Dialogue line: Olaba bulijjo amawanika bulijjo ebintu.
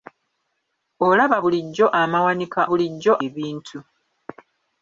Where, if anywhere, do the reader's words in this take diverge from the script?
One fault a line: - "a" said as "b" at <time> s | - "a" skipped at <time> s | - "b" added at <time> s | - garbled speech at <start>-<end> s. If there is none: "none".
none